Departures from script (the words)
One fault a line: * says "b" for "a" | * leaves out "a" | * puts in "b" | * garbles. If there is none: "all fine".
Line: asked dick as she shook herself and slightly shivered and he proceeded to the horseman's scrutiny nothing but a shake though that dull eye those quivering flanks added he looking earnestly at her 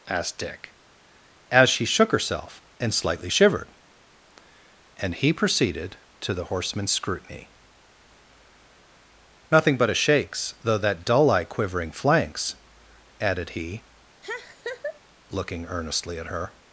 * says "shakes" for "shake"
* leaves out "those"